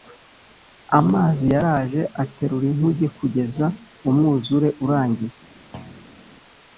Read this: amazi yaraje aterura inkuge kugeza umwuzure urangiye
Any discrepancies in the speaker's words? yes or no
no